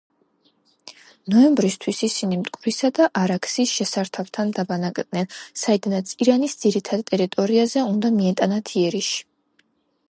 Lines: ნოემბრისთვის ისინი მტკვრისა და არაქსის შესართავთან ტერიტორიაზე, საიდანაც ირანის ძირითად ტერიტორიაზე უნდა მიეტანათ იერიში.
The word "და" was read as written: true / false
true